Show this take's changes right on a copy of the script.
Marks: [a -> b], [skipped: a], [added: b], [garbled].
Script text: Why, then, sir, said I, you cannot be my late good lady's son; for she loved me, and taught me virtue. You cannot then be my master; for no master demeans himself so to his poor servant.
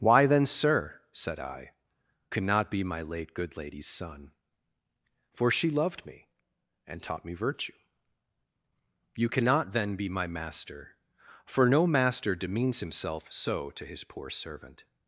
Why, then, sir, said I, [skipped: you] cannot be my late good lady's son; for she loved me, and taught me virtue. You cannot then be my master; for no master demeans himself so to his poor servant.